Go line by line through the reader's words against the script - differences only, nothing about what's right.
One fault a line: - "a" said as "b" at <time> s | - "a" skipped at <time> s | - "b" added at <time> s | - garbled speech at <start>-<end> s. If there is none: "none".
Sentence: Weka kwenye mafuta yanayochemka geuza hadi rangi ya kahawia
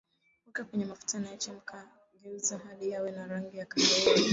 - "yawe na" added at 2.9 s